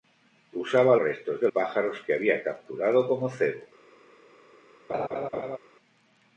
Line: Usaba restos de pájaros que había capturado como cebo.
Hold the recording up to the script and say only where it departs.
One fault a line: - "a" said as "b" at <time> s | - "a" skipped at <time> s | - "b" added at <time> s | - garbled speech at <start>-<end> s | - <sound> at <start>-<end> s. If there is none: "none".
- laugh at 4.9-5.6 s